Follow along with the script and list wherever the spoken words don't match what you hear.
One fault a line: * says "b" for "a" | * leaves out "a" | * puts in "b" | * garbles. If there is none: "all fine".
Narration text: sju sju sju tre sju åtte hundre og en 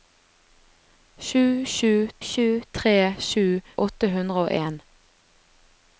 all fine